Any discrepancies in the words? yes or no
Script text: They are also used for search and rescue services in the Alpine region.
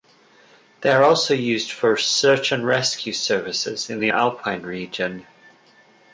no